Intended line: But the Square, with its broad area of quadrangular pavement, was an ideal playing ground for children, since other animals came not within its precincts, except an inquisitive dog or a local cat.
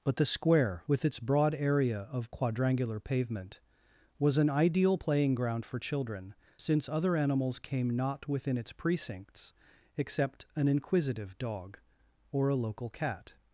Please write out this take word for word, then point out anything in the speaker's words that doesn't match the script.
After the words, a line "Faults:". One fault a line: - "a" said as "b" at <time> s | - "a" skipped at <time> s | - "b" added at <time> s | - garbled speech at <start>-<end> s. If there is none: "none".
But the Square, with its broad area of quadrangular pavement, was an ideal playing ground for children, since other animals came not within its precincts, except an inquisitive dog or a local cat.
Faults:
none